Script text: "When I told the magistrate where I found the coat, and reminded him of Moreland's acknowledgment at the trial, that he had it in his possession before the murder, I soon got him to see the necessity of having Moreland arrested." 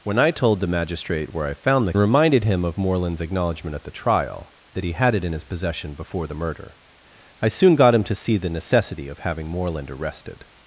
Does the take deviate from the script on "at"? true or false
false